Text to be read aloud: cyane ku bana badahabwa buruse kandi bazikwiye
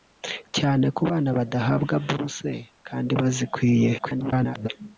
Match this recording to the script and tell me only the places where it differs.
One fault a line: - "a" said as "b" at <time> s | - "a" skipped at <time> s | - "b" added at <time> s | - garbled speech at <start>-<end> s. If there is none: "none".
- garbled speech at 4.0-4.7 s